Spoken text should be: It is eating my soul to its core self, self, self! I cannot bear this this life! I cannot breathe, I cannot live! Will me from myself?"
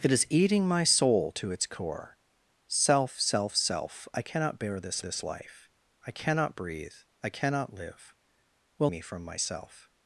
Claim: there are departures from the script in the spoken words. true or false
false